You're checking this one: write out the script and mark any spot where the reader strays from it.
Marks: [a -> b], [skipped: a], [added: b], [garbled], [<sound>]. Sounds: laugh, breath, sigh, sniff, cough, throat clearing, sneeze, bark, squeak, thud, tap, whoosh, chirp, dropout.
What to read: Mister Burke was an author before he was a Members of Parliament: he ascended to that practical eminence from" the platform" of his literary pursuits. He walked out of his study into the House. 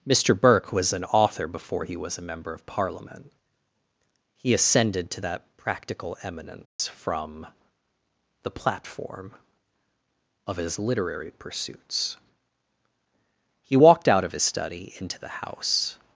Mister Burke was an author before he was a [Members -> Member] of Parliament: he ascended to that practical eminence [dropout] from" the platform" of his literary pursuits. He walked out of his study into the House.